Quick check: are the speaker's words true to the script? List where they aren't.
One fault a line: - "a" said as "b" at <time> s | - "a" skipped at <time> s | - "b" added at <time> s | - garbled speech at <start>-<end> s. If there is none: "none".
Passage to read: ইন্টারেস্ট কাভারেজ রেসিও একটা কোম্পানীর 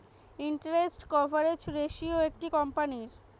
none